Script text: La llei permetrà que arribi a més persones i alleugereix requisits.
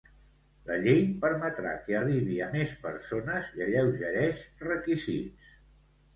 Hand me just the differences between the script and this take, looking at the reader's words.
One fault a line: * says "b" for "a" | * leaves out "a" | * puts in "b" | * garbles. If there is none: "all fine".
all fine